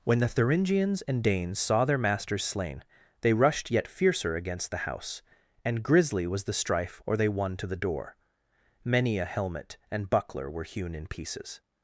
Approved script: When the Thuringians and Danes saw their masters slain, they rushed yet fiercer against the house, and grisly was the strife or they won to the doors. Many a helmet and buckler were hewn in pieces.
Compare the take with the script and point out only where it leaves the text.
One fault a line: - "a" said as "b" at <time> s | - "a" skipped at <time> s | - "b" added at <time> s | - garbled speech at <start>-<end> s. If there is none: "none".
- "doors" said as "door" at 7.8 s